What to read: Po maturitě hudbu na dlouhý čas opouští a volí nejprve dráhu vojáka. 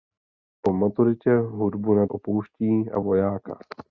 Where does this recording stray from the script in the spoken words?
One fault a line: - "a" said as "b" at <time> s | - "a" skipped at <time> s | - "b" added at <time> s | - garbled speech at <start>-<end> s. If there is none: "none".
- "dlouhý čas" skipped at 2.0 s
- "volí nejprve dráhu" skipped at 3.0 s